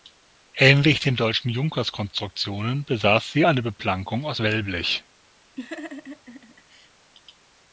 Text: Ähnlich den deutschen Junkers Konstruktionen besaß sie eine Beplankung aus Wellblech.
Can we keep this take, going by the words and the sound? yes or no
no